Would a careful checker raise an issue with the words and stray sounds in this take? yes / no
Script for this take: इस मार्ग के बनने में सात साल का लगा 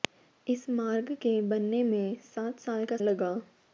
no